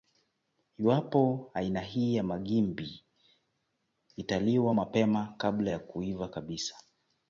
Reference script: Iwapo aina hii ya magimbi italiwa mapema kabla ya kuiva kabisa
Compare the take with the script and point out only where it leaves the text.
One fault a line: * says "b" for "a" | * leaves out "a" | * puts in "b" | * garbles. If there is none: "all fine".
all fine